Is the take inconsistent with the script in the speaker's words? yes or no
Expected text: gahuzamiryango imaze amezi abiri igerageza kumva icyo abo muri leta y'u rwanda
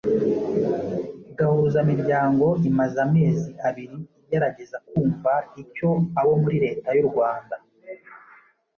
no